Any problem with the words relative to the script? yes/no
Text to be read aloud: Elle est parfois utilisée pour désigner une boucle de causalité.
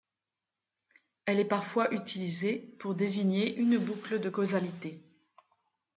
no